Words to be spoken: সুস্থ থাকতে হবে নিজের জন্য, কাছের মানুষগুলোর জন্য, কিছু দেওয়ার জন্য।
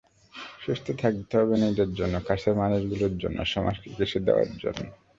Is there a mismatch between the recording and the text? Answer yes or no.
yes